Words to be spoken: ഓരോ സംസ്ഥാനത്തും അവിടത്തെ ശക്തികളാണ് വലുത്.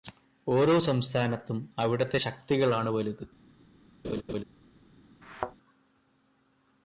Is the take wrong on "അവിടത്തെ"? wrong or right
right